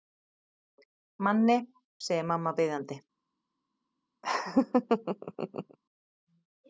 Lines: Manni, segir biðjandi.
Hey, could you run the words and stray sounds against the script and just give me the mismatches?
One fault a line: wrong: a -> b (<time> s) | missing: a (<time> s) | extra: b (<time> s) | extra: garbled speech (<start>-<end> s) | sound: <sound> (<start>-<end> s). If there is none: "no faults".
extra: mamma (2.3 s)
sound: laugh (4.2-5.8 s)